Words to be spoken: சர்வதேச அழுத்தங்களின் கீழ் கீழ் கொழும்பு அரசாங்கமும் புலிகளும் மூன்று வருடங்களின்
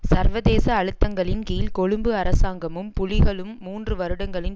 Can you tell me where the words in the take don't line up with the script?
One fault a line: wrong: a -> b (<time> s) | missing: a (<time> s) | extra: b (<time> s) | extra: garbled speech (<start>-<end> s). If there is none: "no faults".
missing: கீழ் (1.7 s)